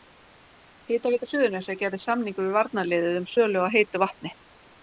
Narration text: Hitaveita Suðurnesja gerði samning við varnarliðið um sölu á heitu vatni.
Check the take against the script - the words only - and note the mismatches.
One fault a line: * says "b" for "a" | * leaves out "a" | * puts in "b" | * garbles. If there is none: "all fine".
all fine